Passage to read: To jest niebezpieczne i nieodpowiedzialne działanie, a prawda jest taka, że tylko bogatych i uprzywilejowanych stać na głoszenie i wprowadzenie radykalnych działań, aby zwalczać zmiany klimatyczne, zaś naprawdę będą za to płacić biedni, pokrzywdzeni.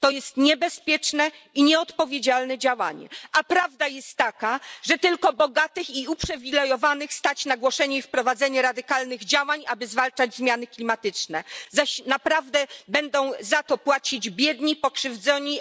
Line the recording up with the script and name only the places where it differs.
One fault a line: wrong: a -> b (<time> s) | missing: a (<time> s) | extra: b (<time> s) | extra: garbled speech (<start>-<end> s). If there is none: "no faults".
no faults